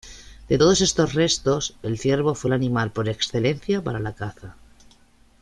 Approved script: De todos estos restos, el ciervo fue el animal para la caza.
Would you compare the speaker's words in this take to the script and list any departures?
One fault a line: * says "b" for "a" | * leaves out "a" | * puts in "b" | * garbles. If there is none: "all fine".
* puts in "por excelencia"